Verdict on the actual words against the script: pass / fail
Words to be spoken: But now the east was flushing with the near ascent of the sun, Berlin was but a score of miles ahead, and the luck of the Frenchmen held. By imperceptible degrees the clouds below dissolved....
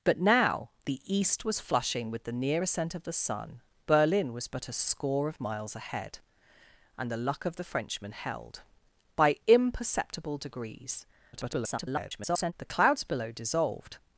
fail